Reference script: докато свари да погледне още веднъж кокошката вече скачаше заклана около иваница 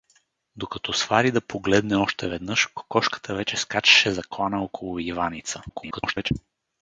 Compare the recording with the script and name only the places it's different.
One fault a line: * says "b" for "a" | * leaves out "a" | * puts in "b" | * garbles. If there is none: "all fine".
* garbles